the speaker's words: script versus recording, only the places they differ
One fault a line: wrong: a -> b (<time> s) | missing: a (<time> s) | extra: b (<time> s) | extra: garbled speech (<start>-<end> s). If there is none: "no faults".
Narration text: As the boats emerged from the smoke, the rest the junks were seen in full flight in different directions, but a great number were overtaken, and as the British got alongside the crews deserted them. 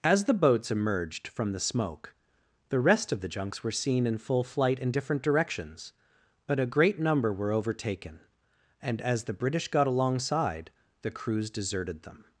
extra: of (3.1 s)